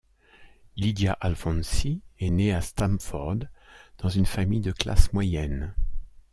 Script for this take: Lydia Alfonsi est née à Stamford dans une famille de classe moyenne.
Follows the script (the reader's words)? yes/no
yes